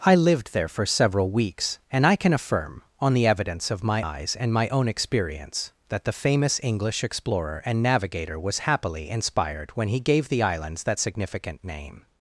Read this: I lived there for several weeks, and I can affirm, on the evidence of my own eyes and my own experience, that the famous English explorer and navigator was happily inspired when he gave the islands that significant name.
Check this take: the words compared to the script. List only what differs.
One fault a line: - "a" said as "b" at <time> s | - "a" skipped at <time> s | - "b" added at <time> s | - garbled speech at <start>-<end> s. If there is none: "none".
- "own" skipped at 4.0 s